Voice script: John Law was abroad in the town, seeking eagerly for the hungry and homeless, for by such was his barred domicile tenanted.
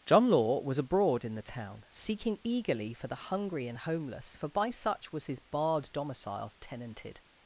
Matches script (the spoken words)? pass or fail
pass